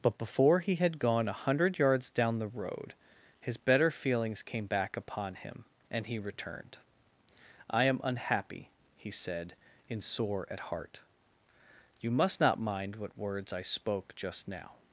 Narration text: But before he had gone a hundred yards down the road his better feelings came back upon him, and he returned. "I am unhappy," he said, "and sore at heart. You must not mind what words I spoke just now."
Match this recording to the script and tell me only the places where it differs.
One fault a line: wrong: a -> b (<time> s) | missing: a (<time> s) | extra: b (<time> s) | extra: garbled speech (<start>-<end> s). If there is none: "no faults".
wrong: and -> in (9.9 s)